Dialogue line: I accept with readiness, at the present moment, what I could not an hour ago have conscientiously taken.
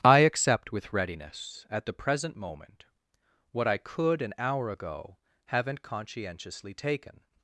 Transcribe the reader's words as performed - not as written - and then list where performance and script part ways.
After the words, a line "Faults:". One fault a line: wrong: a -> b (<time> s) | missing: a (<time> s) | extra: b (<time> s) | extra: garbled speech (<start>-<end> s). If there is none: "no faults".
I accept with readiness, at the present moment, what I could an hour ago haven't conscientiously taken.
Faults:
missing: not (4.2 s)
wrong: have -> haven't (5.5 s)